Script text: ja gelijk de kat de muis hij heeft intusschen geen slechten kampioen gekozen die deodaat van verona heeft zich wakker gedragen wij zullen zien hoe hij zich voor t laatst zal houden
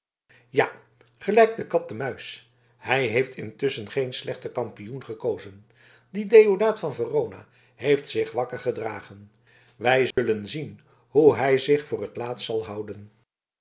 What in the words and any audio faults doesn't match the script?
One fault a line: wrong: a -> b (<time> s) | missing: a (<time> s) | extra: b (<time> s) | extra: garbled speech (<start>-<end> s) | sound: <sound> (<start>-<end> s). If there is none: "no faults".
sound: dropout (10.1-10.2 s)